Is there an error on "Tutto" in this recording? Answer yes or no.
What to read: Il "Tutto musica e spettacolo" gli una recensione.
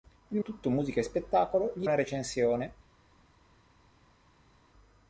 no